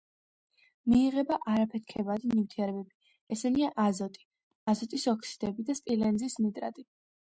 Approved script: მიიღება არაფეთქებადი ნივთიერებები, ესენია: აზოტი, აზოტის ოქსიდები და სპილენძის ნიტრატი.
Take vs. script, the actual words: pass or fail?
pass